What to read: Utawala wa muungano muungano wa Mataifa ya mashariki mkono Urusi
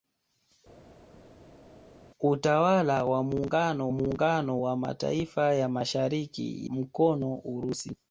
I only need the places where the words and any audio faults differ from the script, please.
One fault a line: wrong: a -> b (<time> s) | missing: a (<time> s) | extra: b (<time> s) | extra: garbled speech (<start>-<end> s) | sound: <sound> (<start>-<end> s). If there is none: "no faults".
no faults